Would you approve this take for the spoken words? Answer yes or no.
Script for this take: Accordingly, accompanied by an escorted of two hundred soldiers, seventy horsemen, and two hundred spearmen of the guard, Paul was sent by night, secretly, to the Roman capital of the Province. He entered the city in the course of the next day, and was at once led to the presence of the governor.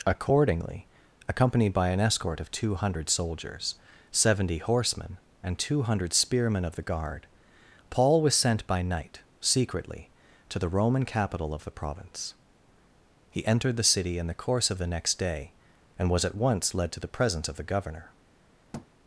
no